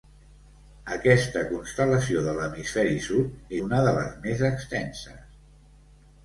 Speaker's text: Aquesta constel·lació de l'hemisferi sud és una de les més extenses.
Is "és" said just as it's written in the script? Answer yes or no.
no